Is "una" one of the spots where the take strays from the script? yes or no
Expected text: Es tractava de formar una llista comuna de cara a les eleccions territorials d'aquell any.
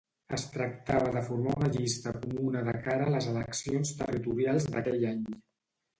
no